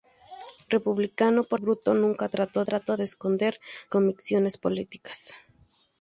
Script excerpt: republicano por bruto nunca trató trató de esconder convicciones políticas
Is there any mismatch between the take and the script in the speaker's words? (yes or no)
no